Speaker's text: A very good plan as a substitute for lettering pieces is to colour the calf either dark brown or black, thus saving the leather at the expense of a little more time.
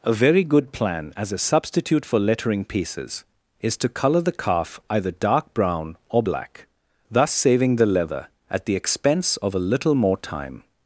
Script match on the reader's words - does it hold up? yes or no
yes